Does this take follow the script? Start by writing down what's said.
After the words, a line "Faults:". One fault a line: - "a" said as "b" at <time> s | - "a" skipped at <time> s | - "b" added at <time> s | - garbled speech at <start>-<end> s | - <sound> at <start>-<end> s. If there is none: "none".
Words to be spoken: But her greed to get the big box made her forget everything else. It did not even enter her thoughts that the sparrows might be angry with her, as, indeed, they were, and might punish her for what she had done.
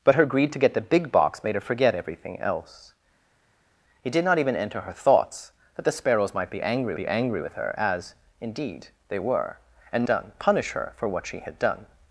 But her greed to get the big box made her forget everything else. It did not even enter her thoughts that the sparrows might be angry be angry with her, as, indeed, they were, and done punish her for what she had done.
Faults:
- "be angry" added at 6.9 s
- "might" said as "done" at 10.0 s